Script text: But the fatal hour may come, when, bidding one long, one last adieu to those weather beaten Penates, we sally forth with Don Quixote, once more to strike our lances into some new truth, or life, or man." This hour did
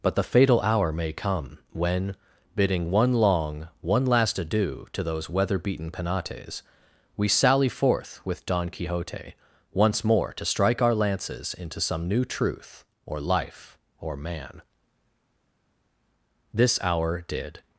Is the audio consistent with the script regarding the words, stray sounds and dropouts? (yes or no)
yes